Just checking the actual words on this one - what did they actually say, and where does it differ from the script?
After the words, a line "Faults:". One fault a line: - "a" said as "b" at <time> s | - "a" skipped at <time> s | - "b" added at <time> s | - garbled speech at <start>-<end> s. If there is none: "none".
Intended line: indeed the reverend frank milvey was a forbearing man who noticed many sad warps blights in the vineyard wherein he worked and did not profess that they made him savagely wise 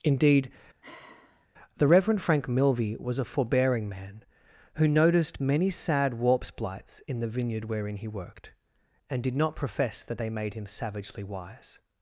indeed the reverend frank milvey was a forbearing man who noticed many sad warps blights in the vineyard wherein he worked and did not profess that they made him savagely wise
Faults:
none